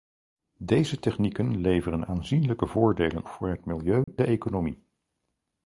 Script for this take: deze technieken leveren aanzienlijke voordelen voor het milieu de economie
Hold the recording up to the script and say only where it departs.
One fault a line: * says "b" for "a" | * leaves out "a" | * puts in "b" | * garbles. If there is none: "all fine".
all fine